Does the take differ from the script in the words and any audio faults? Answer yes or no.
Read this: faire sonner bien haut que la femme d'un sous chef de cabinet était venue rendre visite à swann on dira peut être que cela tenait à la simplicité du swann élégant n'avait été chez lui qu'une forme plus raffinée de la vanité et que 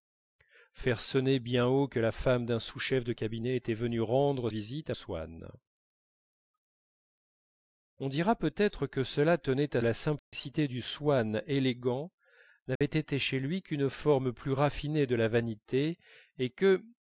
yes